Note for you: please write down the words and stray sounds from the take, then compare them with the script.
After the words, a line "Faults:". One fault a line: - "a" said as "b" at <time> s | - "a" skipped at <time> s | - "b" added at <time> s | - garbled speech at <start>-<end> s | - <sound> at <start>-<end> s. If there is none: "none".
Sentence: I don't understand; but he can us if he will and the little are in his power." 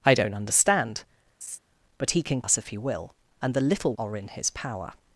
I don't understand; but he can us if he will and the little are in his power."
Faults:
- laugh at 1.4-1.6 s